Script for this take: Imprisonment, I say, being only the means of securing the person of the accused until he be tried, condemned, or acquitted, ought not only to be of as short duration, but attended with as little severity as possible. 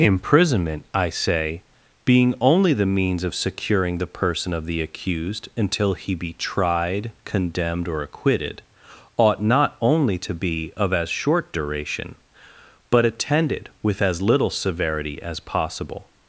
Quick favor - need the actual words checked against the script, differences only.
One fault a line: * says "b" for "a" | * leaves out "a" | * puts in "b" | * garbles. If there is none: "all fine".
all fine